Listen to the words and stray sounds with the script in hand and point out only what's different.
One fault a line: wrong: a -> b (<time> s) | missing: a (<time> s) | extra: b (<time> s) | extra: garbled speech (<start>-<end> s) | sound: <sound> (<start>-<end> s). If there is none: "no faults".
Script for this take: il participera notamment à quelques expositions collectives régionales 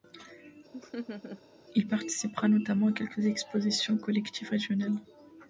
sound: laugh (0.7-1.4 s)